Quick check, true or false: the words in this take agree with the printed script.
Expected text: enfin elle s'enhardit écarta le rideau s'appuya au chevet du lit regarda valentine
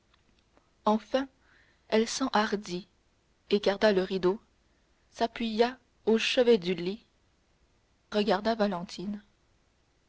true